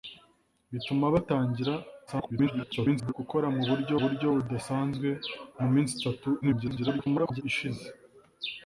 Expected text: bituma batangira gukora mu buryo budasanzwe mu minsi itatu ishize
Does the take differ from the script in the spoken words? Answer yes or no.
yes